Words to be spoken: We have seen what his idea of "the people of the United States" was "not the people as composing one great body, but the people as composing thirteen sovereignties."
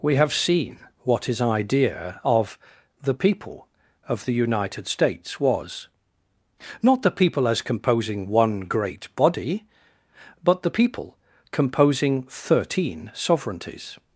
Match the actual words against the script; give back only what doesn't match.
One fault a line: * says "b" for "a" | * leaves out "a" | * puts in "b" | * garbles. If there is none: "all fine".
* leaves out "as"